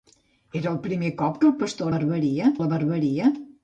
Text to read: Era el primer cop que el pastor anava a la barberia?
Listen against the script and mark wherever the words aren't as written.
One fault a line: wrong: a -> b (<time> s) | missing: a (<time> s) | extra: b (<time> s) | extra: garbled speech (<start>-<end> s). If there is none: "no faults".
wrong: anava -> barberia (2.0 s)